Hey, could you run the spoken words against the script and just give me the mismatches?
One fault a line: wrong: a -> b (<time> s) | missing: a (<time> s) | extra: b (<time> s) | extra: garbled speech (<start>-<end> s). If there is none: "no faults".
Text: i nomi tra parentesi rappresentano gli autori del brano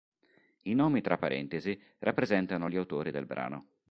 no faults